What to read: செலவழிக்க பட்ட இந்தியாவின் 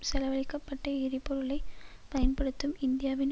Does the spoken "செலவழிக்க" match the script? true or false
true